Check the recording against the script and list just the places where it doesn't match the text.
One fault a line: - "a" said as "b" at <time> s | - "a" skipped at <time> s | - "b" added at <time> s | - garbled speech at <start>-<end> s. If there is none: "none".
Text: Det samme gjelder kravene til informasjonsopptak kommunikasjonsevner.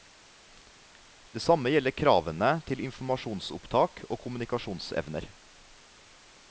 - "og" added at 4.1 s